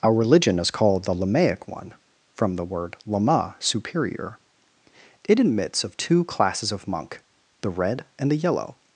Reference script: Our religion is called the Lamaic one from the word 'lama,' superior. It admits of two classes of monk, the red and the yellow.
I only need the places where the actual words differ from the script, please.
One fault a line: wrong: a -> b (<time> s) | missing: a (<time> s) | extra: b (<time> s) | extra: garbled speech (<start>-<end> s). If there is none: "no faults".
no faults